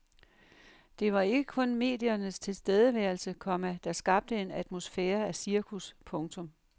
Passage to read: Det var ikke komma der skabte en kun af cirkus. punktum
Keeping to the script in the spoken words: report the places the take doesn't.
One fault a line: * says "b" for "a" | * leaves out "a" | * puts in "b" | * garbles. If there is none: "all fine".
* puts in "kun mediernes tilstedeværelse"
* says "atmosfære" for "kun"